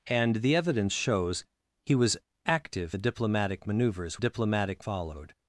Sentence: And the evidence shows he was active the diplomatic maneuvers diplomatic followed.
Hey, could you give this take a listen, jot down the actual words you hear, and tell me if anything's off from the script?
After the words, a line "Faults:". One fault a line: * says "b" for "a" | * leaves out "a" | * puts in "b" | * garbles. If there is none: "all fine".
And the evidence shows he was active the diplomatic maneuvers diplomatic followed.
Faults:
all fine